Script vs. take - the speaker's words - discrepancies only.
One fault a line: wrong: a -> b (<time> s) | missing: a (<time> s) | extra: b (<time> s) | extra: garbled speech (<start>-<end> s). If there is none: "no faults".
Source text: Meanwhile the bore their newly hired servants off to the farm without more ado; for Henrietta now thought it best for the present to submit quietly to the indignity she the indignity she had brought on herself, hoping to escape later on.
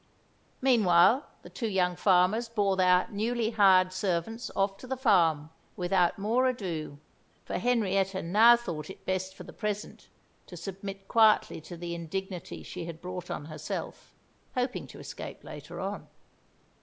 extra: two young farmers (1.5 s)
missing: the indignity she (12.8 s)